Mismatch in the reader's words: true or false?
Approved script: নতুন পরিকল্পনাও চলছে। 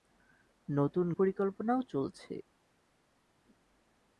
false